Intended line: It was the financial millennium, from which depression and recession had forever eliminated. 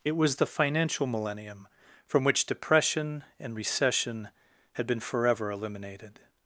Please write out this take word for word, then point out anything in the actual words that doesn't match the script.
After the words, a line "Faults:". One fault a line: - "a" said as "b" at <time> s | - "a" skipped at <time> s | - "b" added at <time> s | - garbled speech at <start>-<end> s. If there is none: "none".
It was the financial millennium, from which depression and recession had been forever eliminated.
Faults:
- "been" added at 4.9 s